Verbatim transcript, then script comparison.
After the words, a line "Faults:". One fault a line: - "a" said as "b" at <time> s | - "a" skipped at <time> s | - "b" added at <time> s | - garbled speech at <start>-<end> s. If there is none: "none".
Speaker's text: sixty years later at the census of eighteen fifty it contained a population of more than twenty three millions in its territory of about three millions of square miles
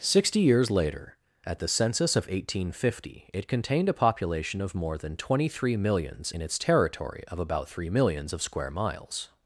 sixty years later at the census of eighteen fifty it contained a population of more than twenty three millions in its territory of about three millions of square miles
Faults:
none